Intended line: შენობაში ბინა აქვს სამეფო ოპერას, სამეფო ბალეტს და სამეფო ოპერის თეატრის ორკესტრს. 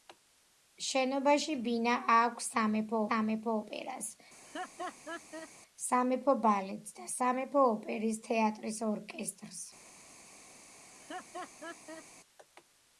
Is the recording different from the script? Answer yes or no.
yes